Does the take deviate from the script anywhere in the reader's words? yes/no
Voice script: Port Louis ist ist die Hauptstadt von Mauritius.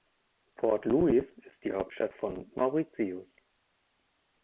yes